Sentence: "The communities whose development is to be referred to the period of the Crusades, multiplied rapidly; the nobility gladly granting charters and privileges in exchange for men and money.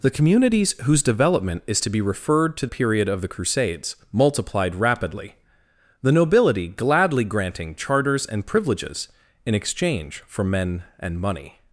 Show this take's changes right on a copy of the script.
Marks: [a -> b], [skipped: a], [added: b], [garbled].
"The communities whose development is to be referred to [skipped: the] period of the Crusades, multiplied rapidly; the nobility gladly granting charters and privileges in exchange for men and money.